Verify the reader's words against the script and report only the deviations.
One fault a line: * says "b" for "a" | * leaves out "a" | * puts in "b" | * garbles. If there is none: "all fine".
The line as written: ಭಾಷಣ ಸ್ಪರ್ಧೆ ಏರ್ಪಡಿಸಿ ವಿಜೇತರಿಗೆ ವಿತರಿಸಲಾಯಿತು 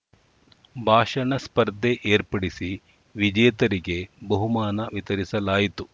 * puts in "ಬಹುಮಾನ"